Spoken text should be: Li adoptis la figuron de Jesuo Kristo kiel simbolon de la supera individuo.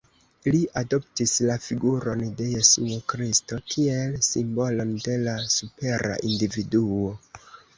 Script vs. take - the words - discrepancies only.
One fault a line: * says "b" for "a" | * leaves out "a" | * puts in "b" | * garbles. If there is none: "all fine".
all fine